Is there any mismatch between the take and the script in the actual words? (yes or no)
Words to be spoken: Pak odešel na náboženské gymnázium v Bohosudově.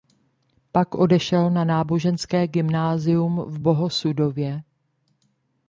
no